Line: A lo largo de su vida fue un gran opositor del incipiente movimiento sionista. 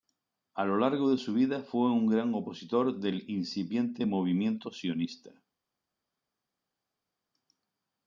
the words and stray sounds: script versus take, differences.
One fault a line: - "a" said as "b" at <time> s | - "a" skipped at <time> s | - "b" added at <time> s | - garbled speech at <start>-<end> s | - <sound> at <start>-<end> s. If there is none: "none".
none